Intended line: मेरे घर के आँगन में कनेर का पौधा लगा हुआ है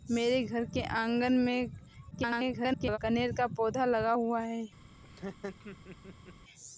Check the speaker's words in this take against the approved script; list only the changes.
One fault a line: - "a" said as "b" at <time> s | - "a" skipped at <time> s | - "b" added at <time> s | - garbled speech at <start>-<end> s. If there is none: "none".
- garbled speech at 2.1-3.0 s